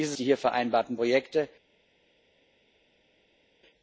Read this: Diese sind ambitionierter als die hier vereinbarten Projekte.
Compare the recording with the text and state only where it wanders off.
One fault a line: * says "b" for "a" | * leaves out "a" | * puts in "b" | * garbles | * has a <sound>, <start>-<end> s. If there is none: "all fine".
* leaves out "sind ambitionierter als"